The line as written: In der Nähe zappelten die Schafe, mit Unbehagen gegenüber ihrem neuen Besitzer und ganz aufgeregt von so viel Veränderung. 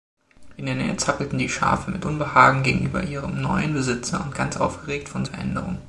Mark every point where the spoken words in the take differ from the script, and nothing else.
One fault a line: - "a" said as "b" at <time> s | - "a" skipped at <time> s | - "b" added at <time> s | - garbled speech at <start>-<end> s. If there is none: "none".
- "so viel" skipped at 5.2 s